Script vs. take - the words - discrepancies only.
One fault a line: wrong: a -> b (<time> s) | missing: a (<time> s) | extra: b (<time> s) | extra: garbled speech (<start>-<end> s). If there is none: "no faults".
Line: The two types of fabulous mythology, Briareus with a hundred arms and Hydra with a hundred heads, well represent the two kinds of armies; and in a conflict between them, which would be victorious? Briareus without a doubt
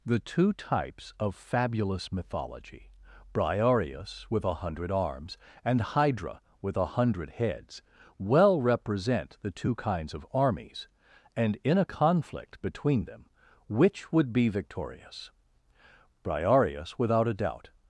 no faults